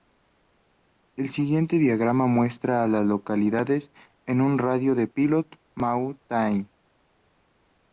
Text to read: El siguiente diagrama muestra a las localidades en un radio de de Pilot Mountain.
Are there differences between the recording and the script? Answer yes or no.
no